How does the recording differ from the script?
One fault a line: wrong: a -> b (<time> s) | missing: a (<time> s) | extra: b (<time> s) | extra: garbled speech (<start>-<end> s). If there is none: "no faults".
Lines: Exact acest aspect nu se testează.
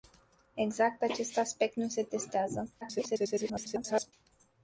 extra: garbled speech (2.8-4.1 s)